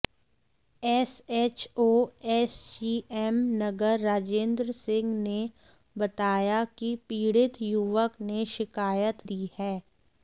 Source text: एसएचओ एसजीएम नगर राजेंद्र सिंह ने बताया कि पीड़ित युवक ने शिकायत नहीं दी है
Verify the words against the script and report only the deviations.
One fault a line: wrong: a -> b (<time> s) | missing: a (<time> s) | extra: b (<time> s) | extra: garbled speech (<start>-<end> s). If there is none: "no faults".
missing: नहीं (9.3 s)